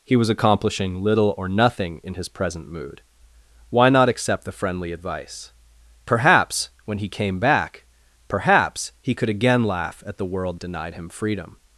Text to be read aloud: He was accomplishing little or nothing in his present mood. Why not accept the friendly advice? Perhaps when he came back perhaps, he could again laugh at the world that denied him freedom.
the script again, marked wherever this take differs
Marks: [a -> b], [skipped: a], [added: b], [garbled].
He was accomplishing little or nothing in his present mood. Why not accept the friendly advice? Perhaps when he came back perhaps, he could again laugh at the world [skipped: that] denied him freedom.